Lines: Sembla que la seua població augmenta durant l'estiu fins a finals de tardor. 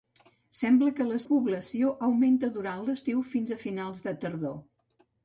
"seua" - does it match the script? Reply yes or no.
no